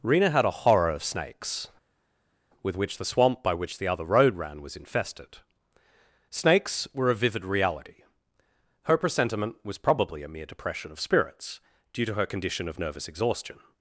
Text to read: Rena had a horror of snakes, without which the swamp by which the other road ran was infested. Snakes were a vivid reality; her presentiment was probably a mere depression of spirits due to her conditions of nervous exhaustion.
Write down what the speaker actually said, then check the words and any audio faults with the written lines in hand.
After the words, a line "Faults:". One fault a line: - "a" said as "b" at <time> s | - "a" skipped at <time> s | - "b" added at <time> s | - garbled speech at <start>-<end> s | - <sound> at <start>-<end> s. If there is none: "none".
Rena had a horror of snakes, with which the swamp by which the other road ran was infested. Snakes were a vivid reality; her presentiment was probably a mere depression of spirits due to her condition of nervous exhaustion.
Faults:
- "without" said as "with" at 2.6 s
- "conditions" said as "condition" at 12.3 s